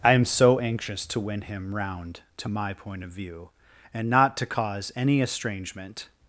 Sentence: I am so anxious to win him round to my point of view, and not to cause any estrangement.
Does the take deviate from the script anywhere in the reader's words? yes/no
no